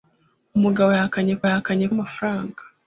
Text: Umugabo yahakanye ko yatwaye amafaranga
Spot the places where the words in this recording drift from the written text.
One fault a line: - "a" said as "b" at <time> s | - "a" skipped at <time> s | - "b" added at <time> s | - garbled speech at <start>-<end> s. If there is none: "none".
- "yatwaye" said as "yahakanye" at 1.4 s